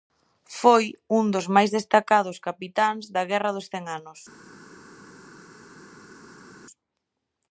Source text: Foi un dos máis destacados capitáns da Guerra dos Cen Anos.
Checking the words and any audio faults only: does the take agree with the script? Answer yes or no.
yes